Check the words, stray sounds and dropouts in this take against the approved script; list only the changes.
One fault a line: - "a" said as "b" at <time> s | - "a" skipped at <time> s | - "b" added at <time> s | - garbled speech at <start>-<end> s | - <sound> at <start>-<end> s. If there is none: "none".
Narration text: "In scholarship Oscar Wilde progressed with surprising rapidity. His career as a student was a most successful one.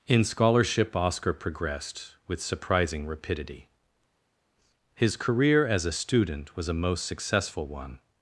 - "Wilde" skipped at 1.3 s